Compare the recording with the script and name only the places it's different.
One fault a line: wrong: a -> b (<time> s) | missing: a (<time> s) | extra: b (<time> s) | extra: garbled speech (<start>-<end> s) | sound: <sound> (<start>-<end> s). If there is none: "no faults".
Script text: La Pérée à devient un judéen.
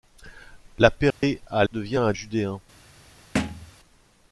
sound: dropout (1.1-1.2 s)
sound: thud (3.3-3.7 s)